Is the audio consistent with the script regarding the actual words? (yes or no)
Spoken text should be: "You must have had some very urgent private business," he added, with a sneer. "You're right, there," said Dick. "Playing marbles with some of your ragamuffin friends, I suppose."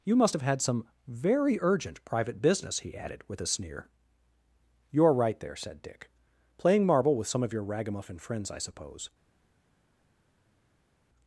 no